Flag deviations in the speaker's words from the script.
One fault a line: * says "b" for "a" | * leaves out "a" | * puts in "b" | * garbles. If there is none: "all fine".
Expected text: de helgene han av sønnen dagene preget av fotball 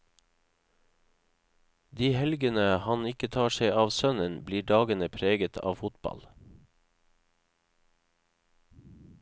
* puts in "ikke tar seg"
* puts in "blir"